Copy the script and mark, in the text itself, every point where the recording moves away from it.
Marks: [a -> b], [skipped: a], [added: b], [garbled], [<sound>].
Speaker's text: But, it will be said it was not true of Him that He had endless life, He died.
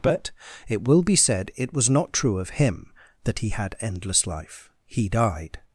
But, it will be said it was not true of Him that He had endless life, He died.